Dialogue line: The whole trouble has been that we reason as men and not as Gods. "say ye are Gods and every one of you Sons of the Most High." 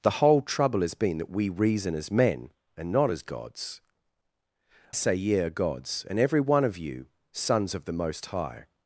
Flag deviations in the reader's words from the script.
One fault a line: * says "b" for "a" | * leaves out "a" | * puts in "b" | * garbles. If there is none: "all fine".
all fine